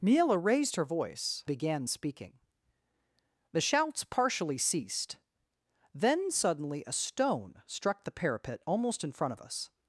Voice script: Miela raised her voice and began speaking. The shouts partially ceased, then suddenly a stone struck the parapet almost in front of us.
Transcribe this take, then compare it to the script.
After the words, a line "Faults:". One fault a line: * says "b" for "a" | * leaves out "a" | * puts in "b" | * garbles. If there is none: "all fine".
Miela raised her voice began speaking. The shouts partially ceased, then suddenly a stone struck the parapet almost in front of us.
Faults:
* leaves out "and"